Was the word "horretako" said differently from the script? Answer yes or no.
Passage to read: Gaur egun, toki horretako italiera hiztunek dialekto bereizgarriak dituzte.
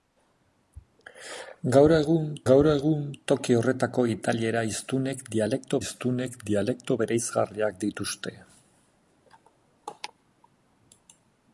no